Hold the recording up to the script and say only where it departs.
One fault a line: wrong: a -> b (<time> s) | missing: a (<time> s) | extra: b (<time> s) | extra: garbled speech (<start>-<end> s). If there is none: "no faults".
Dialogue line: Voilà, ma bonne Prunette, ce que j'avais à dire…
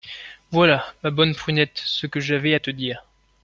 extra: te (2.6 s)